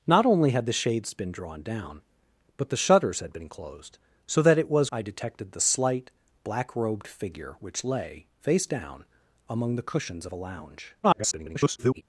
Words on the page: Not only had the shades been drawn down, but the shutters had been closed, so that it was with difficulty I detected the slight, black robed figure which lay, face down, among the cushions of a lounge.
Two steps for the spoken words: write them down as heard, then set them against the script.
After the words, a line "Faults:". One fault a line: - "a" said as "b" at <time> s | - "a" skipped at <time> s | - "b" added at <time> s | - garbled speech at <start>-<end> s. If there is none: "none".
Not only had the shades been drawn down, but the shutters had been closed, so that it was I detected the slight, black robed figure which lay, face down, among the cushions of a lounge. [garbled]
Faults:
- "with difficulty" skipped at 4.9 s
- garbled speech at 11.0-12.0 s